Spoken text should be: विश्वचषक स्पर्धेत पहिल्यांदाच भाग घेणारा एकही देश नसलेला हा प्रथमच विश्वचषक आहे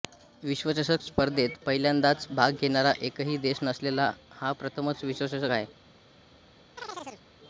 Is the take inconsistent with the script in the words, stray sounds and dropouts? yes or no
yes